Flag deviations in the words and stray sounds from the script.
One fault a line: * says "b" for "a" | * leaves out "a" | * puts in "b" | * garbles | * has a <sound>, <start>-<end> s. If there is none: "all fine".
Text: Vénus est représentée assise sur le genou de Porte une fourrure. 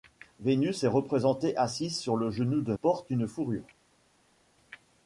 all fine